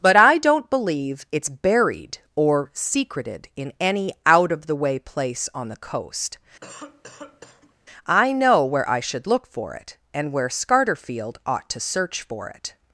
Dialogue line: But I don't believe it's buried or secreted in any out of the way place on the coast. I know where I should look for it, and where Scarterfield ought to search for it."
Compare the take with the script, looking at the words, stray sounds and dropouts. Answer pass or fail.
fail